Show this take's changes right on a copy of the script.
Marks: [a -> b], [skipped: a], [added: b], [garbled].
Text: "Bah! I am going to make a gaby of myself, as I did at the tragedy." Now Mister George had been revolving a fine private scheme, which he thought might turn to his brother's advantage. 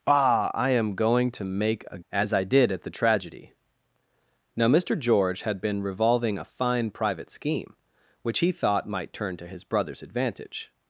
"Bah! I am going to make a [skipped: gaby of myself,] as I did at the tragedy." Now Mister George had been revolving a fine private scheme, which he thought might turn to his brother's advantage.